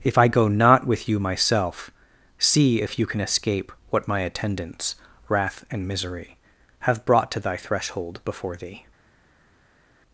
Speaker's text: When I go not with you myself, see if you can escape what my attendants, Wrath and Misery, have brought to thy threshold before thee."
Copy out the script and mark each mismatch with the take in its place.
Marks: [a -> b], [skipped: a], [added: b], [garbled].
[When -> If] I go not with you myself, see if you can escape what my attendants, Wrath and Misery, have brought to thy threshold before thee."